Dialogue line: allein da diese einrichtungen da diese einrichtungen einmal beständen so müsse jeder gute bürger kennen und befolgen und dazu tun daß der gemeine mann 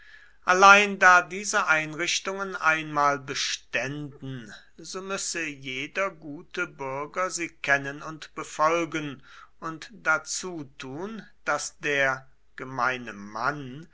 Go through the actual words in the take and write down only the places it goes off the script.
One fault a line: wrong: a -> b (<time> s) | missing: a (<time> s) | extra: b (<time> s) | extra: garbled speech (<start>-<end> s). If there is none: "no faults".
missing: da diese einrichtungen (2.5 s)
extra: sie (7.3 s)